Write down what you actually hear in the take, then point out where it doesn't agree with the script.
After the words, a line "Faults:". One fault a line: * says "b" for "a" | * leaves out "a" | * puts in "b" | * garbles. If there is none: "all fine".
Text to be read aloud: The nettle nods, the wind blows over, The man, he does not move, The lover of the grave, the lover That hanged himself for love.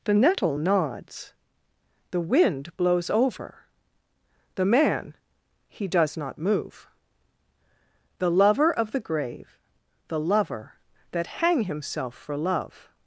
The nettle nods, the wind blows over, The man, he does not move, The lover of the grave, the lover That hang himself for love.
Faults:
* says "hang" for "hanged"